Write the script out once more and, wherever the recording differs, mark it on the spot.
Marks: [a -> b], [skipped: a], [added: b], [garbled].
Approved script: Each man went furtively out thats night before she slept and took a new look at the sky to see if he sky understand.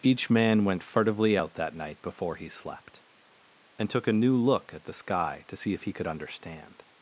Each man went furtively out [thats -> that] night before [she -> he] slept and took a new look at the sky to see if he [sky -> could] understand.